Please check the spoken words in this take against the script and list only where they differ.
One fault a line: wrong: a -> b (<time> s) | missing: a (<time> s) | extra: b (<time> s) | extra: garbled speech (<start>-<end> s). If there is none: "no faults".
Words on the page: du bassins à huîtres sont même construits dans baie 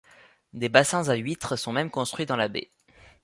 wrong: du -> des (0.5 s)
extra: la (2.4 s)